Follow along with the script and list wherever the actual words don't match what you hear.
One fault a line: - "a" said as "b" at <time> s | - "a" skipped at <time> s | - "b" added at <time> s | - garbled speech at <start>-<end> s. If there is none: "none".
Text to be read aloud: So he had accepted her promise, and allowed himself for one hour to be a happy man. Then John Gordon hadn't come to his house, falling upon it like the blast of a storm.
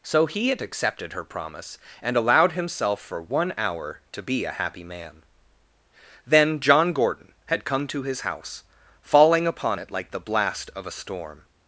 - "hadn't" said as "had" at 7.5 s